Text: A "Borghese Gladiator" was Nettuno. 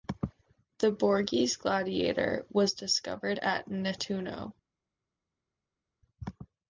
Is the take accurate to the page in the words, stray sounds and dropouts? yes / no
no